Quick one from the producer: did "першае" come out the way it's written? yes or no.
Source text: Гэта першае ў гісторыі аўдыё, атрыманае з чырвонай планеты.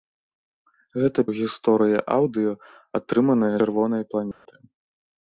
no